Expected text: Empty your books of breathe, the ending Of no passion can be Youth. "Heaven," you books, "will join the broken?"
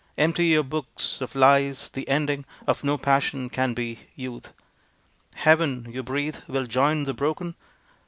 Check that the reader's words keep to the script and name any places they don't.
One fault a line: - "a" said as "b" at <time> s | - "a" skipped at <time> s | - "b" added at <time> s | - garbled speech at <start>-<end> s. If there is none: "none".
- "breathe" said as "lies" at 1.4 s
- "books" said as "breathe" at 6.0 s